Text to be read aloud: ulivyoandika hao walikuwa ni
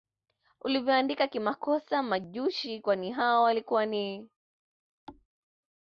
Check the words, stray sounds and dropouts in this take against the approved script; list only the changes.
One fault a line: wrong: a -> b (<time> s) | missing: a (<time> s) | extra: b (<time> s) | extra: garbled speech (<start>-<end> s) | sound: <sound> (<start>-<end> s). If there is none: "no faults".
extra: kimakosa Majushi kwani (1.3 s)
sound: thud (5.1-5.3 s)